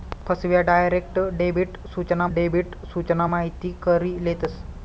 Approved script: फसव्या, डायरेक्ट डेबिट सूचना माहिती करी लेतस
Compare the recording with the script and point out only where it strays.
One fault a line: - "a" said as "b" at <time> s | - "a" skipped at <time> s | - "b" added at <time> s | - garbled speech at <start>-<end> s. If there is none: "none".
- "डेबिट सूचना" added at 2.3 s